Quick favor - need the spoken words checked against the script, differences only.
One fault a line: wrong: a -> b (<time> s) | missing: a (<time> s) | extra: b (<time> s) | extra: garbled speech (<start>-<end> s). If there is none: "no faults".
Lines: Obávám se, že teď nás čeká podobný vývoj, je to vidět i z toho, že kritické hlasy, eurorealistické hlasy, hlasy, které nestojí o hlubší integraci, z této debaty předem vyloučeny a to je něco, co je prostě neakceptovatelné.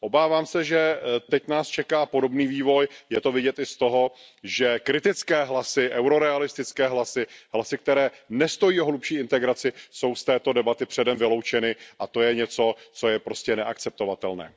extra: jsou (9.9 s)